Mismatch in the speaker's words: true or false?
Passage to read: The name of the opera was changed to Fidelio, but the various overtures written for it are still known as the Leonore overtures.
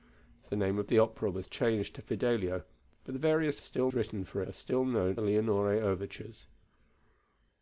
true